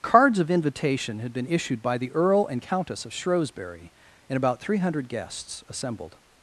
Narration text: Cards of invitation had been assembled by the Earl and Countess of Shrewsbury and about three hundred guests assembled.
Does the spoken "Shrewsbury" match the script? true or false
true